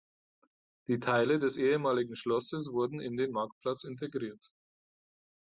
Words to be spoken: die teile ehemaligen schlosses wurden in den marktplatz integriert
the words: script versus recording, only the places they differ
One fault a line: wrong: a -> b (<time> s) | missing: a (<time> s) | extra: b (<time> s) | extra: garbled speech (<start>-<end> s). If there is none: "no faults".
extra: des (1.4 s)